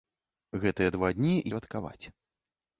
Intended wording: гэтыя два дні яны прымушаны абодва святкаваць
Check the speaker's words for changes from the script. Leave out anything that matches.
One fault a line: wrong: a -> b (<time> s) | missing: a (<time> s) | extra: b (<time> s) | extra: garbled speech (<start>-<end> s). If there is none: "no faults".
missing: яны прымушаны абодва (1.3 s)